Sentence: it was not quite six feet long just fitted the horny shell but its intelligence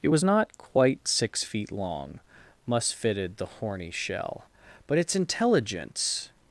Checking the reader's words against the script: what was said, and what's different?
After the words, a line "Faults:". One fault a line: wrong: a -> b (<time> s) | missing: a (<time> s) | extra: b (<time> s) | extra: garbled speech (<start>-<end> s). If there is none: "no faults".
it was not quite six feet long must fitted the horny shell but its intelligence
Faults:
wrong: just -> must (2.6 s)